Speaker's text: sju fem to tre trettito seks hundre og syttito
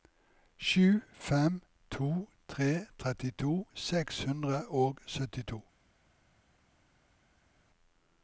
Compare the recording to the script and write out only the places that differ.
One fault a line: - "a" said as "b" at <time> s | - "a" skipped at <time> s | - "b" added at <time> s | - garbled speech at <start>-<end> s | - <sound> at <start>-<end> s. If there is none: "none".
none